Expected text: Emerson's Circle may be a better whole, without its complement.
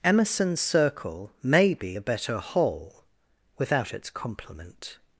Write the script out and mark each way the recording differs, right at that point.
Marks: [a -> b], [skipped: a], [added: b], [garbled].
Emerson's Circle may be a better whole, without its complement.